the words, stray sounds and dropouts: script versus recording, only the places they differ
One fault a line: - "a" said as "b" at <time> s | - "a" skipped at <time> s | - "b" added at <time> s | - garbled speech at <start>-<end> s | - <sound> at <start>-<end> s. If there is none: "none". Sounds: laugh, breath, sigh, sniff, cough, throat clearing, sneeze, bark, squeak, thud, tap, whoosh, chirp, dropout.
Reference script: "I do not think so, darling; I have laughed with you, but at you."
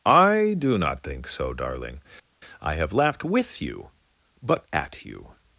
none